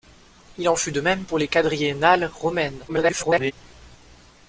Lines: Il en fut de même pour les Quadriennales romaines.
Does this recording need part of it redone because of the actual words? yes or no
yes